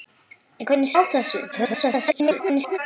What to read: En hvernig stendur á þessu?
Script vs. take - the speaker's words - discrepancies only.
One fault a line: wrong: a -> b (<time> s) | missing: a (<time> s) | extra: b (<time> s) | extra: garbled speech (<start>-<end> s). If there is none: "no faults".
missing: stendur (0.9 s)
extra: garbled speech (1.5-2.8 s)